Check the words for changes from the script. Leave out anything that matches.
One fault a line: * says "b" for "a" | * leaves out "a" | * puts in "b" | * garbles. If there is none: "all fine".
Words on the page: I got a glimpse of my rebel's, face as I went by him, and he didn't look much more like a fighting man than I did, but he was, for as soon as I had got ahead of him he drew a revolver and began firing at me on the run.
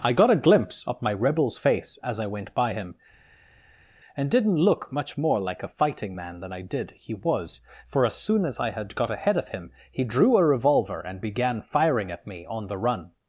* leaves out "he"
* leaves out "but"